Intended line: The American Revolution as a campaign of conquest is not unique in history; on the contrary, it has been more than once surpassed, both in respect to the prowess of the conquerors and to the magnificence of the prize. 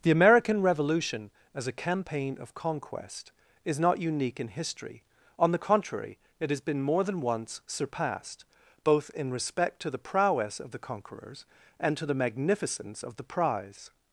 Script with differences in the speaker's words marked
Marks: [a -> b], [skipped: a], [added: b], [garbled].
The American Revolution as a campaign of conquest is not unique in history; on the contrary, it has been more than once surpassed, both in respect to the prowess of the conquerors and to the magnificence of the prize.